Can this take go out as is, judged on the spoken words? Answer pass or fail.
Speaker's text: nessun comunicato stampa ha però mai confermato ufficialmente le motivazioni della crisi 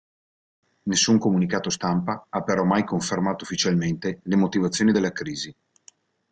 pass